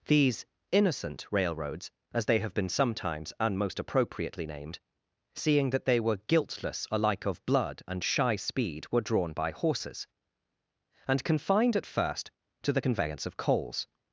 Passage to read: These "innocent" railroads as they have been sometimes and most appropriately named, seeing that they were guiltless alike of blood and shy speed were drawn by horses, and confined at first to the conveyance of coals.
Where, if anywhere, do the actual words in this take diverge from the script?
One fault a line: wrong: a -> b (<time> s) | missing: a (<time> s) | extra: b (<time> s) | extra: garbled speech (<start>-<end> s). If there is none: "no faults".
no faults